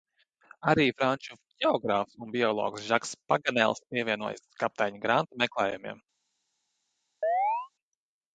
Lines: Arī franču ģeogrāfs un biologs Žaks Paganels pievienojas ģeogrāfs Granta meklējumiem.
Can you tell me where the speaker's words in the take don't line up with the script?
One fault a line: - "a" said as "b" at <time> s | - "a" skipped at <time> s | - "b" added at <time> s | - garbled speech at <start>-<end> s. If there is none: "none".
- "ģeogrāfs" said as "kapteiņa" at 4.6 s